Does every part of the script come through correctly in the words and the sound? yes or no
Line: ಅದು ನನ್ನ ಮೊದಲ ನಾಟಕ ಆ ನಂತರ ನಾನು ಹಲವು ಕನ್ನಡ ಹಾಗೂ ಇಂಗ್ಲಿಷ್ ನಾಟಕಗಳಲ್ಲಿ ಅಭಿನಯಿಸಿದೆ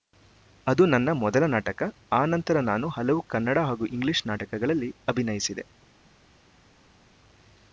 yes